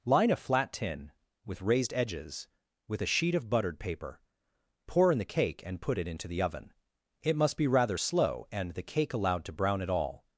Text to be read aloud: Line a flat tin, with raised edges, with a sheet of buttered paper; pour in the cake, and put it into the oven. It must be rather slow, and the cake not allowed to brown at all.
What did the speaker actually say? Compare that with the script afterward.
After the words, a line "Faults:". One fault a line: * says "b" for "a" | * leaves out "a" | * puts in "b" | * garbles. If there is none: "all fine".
Line a flat tin, with raised edges, with a sheet of buttered paper; pour in the cake, and put it into the oven. It must be rather slow, and the cake allowed to brown at all.
Faults:
* leaves out "not"